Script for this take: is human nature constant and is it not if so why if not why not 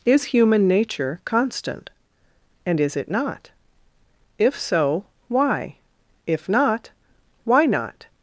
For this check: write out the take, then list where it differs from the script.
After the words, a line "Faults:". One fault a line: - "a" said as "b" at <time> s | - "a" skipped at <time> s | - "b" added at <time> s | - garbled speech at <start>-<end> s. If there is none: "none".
is human nature constant and is it not if so why if not why not
Faults:
none